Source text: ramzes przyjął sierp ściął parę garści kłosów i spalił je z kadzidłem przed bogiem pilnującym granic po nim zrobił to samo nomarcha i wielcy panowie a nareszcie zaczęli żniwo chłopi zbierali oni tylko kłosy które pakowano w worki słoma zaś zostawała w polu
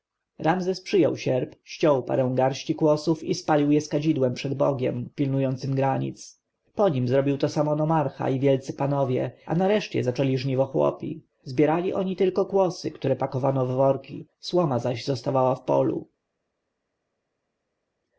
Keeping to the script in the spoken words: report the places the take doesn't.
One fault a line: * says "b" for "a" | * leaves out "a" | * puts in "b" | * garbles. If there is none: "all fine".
all fine